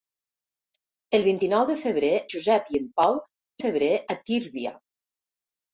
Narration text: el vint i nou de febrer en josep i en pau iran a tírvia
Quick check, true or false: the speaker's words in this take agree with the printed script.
false